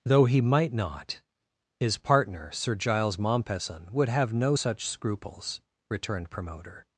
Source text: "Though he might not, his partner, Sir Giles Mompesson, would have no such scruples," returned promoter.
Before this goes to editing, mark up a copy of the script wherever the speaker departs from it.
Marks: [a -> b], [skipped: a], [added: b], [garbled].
"Though he might not, his partner, Sir Giles Mompesson, would have no such scruples," returned promoter.